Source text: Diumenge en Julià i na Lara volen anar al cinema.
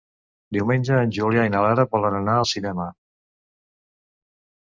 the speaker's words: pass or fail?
pass